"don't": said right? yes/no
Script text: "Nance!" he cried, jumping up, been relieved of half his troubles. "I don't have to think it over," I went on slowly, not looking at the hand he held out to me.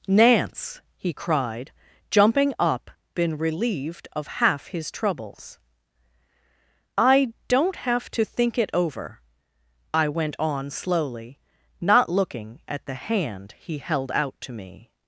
yes